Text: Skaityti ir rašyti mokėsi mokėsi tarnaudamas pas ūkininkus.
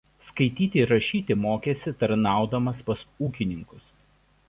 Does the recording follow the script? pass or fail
fail